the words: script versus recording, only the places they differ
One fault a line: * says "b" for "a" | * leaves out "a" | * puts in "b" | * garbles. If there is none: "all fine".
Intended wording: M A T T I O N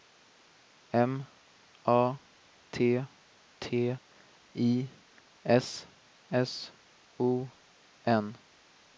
* puts in "S S"